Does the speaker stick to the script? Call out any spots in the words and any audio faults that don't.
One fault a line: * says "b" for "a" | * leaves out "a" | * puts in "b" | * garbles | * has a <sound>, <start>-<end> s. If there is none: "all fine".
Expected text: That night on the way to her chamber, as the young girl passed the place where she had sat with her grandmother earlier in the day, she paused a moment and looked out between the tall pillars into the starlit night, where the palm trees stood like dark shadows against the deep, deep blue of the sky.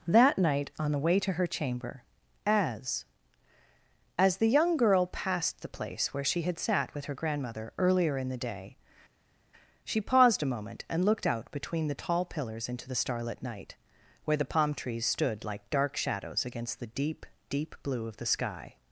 * puts in "as"